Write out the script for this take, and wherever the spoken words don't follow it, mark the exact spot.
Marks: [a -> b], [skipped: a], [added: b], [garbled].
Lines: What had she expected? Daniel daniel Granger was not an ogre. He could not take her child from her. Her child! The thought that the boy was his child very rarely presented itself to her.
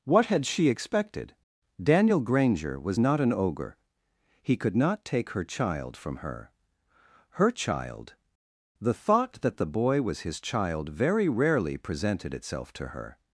What had she expected? Daniel [skipped: daniel] Granger was not an ogre. He could not take her child from her. Her child! The thought that the boy was his child very rarely presented itself to her.